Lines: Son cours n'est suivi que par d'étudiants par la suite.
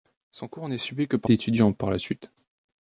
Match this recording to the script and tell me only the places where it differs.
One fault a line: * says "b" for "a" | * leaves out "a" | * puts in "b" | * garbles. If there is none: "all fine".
all fine